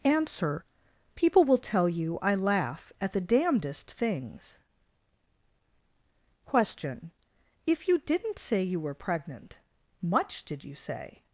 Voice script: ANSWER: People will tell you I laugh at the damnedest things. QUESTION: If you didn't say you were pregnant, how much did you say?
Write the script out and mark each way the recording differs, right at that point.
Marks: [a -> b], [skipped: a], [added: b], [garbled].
ANSWER: People will tell you I laugh at the damnedest things. QUESTION: If you didn't say you were pregnant, [skipped: how] much did you say?